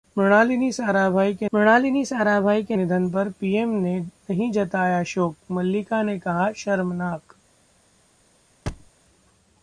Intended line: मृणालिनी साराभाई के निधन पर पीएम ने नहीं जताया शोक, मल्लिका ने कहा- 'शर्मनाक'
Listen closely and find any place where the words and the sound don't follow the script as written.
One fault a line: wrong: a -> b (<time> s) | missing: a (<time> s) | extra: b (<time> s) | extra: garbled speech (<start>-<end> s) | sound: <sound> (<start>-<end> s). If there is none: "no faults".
extra: मृणालिनी साराभाई के (1.5 s)
sound: thud (8.7-8.9 s)